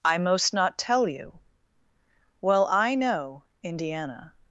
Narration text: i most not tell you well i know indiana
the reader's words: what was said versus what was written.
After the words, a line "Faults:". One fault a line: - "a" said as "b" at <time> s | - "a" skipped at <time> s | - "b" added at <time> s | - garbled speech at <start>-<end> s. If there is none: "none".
i most not tell you well i know indiana
Faults:
none